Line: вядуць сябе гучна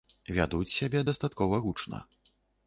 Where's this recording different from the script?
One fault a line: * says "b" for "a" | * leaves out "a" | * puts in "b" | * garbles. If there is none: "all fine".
* puts in "дастаткова"